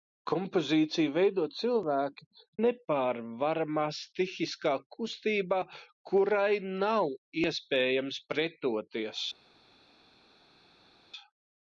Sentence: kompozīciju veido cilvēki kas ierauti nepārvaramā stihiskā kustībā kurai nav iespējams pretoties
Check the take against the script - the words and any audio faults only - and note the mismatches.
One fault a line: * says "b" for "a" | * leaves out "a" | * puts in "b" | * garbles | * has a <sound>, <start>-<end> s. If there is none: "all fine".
* leaves out "kas ierauti"